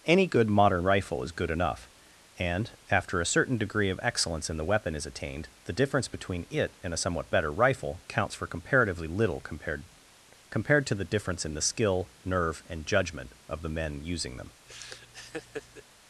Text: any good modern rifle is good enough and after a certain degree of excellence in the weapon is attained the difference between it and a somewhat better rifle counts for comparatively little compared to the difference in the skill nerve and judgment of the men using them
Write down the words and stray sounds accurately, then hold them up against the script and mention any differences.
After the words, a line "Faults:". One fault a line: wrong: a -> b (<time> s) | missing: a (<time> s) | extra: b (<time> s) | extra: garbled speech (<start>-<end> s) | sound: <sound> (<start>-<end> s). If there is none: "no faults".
any good modern rifle is good enough and after a certain degree of excellence in the weapon is attained the difference between it and a somewhat better rifle counts for comparatively little compared compared to the difference in the skill nerve and judgment of the men using them
Faults:
extra: compared (10.5 s)
sound: laugh (14.7-15.8 s)